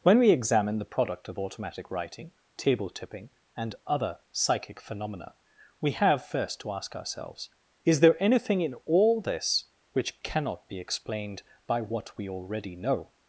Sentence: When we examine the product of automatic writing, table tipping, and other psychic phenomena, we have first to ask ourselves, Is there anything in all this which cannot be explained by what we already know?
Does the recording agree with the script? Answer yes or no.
yes